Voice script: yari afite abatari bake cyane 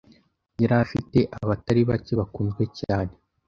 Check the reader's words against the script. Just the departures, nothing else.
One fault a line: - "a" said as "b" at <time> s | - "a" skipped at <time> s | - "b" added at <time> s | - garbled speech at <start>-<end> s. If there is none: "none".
- "bakunzwe" added at 2.2 s